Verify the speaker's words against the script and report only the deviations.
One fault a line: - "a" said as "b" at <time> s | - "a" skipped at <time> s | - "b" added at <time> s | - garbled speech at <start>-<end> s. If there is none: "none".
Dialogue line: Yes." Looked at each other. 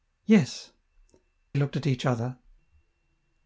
none